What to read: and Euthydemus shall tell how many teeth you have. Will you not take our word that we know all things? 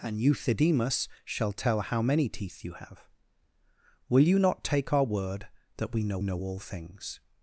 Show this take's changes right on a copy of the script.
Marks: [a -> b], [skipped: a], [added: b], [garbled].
and Euthydemus shall tell how many teeth you have. Will you not take our word that we know [added: know] all things?